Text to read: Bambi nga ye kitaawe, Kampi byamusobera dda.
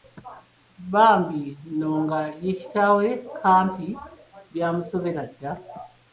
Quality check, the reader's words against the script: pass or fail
fail